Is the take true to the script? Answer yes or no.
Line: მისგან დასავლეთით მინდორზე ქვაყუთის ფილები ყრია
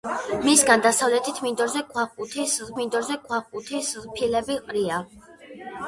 no